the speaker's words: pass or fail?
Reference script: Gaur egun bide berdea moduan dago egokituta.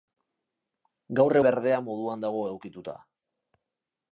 fail